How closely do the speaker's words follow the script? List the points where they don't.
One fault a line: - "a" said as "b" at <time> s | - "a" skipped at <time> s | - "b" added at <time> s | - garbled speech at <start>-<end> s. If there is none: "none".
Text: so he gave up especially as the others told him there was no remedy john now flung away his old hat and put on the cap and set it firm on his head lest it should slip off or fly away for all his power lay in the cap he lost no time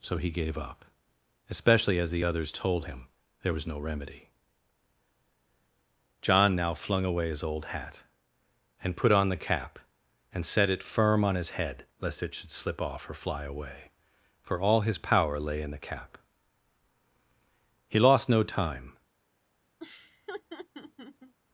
none